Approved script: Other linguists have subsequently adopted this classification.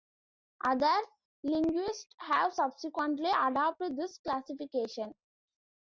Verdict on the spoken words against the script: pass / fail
pass